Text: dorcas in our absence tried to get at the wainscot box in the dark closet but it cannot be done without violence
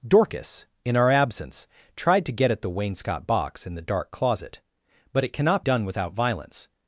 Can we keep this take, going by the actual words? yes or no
no